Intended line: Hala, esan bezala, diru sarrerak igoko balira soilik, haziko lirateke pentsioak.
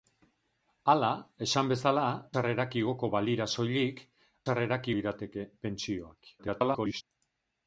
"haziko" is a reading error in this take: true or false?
true